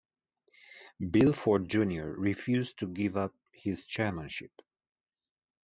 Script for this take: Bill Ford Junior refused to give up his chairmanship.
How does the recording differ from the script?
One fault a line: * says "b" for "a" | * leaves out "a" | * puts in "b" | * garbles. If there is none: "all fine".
all fine